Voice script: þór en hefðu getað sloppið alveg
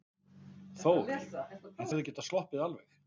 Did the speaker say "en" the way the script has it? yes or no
yes